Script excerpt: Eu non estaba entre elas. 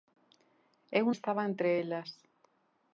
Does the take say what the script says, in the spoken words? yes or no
no